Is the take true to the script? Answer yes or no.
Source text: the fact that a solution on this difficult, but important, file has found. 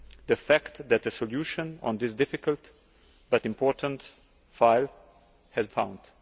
yes